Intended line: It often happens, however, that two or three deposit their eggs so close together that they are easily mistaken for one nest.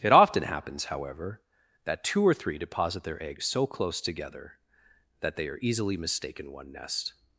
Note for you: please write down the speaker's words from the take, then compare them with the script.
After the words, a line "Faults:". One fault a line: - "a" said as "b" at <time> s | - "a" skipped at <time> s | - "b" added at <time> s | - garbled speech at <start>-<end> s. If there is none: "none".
It often happens, however, that two or three deposit their eggs so close together that they are easily mistaken one nest.
Faults:
- "for" skipped at 6.5 s